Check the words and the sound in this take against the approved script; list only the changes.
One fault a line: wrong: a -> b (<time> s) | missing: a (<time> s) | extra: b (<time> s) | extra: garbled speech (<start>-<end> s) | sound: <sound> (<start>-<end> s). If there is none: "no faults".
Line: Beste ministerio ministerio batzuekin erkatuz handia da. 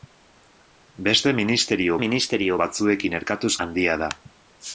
no faults